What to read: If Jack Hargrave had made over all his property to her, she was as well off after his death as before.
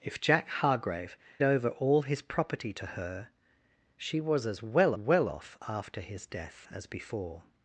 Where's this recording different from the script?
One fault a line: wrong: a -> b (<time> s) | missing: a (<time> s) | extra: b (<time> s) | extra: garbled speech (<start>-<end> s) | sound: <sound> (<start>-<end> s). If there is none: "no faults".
missing: had made (1.1 s)
extra: well (4.9 s)